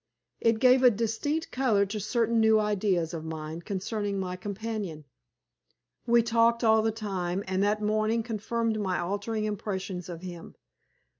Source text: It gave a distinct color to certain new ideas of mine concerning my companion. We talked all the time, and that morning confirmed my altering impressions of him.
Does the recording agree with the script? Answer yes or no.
yes